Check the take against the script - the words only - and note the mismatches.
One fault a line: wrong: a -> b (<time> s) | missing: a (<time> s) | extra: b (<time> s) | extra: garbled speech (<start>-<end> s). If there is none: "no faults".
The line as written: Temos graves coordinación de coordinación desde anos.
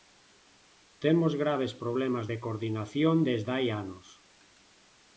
wrong: coordinación -> problemas (1.8 s)
extra: hai (3.6 s)